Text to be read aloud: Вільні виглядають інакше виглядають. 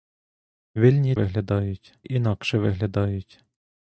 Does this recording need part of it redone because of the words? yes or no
no